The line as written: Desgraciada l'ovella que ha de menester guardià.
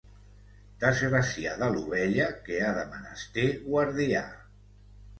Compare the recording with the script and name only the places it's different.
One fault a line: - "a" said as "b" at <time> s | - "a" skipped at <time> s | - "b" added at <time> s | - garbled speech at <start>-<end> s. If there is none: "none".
none